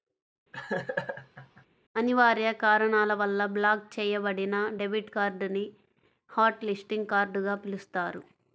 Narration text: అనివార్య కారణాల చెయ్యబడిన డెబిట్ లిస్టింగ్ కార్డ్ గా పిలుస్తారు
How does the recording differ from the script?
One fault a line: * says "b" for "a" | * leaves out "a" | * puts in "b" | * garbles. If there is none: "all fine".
* puts in "వల్ల బ్లాక్"
* puts in "కార్డ్ ని హాట్"